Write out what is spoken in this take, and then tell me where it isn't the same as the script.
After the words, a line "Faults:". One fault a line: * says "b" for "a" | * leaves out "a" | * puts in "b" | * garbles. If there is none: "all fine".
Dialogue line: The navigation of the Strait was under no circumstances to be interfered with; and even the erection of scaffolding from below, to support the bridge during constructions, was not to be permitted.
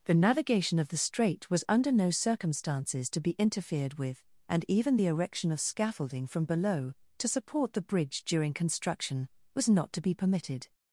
The navigation of the Strait was under no circumstances to be interfered with; and even the erection of scaffolding from below, to support the bridge during construction, was not to be permitted.
Faults:
* says "construction" for "constructions"